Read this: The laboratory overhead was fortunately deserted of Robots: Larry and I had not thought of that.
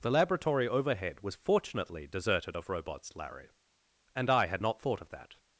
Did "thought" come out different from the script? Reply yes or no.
no